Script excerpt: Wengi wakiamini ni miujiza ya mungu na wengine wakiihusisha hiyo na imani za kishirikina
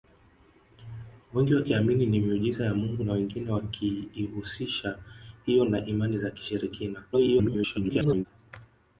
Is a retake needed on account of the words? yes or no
yes